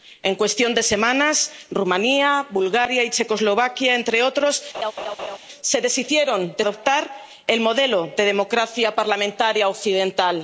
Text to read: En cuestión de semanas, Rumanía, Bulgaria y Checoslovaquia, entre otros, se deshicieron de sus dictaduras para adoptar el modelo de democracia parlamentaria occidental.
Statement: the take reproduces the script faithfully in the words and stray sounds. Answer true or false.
false